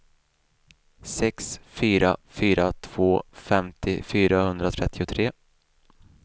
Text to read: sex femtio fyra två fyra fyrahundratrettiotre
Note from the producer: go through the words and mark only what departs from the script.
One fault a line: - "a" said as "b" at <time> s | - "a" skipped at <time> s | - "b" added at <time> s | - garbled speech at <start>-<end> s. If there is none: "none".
- "femtio" said as "fyra" at 1.6 s
- "fyra" said as "femtio" at 3.3 s